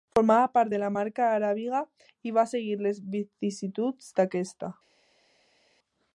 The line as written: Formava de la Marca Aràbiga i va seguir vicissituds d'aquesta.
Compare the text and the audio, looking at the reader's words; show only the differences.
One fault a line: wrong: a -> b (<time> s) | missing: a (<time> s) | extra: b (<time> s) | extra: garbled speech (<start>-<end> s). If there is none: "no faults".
extra: part (0.5 s)
extra: les (2.9 s)